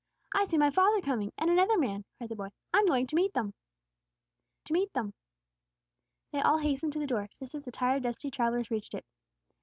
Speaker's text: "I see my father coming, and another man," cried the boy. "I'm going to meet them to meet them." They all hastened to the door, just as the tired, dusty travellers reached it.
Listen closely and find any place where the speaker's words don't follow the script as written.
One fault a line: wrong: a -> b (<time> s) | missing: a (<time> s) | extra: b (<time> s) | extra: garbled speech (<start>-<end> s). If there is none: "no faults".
no faults